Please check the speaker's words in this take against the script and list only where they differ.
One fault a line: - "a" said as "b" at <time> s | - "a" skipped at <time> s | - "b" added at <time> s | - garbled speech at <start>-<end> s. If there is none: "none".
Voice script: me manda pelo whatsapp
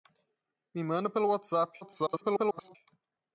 - garbled speech at 1.8-2.8 s